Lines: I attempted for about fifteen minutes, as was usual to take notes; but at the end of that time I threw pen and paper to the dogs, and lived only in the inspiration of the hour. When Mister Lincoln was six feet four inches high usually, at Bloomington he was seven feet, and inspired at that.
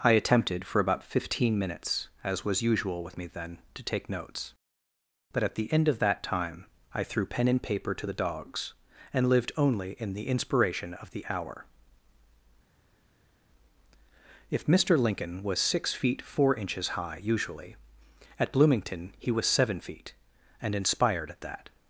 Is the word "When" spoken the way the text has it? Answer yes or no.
no